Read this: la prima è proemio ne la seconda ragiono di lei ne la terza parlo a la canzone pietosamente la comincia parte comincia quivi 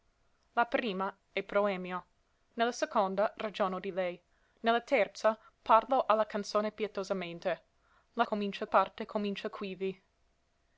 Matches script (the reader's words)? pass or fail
pass